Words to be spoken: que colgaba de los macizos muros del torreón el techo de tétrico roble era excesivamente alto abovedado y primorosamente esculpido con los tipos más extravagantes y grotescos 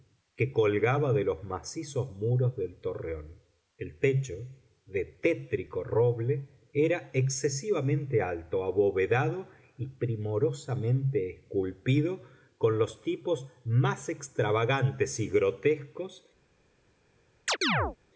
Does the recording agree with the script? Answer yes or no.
yes